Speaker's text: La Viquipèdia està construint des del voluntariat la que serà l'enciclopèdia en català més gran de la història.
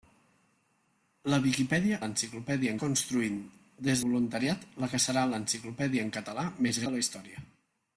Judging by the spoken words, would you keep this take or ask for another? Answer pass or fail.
fail